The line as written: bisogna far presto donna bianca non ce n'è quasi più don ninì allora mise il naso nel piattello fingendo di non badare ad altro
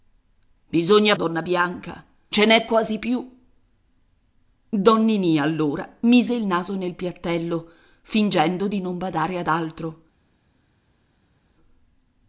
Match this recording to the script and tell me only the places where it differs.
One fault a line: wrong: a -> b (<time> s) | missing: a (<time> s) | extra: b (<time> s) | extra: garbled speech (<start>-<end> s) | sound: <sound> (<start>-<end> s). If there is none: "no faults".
missing: far presto (1.1 s)
missing: non (2.0 s)